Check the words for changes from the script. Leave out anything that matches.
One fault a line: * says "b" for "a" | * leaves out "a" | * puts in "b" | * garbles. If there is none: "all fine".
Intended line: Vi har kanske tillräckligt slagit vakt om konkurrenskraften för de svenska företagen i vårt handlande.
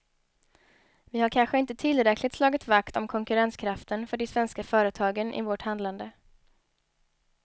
* puts in "inte"